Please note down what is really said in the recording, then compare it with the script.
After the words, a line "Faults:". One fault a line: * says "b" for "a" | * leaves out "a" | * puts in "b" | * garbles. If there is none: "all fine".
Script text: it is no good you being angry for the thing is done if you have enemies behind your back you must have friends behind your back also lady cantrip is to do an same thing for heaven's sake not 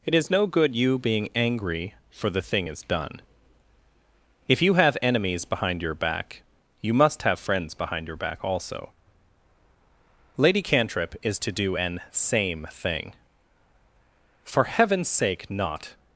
it is no good you being angry for the thing is done if you have enemies behind your back you must have friends behind your back also lady cantrip is to do an same thing for heaven's sake not
Faults:
all fine